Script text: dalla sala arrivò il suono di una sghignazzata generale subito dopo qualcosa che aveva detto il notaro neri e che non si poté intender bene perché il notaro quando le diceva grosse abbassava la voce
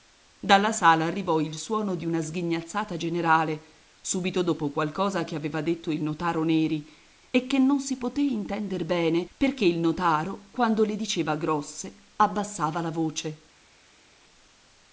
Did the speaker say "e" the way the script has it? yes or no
yes